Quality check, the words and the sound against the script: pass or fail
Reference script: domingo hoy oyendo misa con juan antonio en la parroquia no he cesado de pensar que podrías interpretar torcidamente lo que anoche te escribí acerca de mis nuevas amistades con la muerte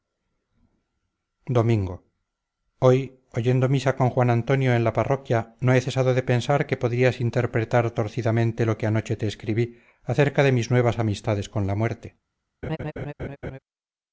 fail